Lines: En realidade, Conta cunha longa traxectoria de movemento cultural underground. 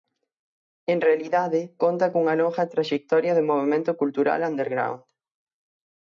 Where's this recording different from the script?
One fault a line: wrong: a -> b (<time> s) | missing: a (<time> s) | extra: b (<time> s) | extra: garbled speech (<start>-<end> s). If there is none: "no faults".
no faults